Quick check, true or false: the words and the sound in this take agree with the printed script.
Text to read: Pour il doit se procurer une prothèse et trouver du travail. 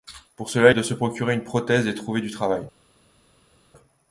false